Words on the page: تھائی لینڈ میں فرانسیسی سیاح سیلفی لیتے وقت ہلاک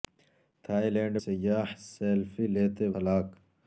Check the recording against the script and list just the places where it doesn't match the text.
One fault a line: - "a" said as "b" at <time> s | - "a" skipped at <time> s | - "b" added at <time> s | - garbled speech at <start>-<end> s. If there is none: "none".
- "میں فرانسیسی" skipped at 1.1 s
- "وقت" skipped at 2.9 s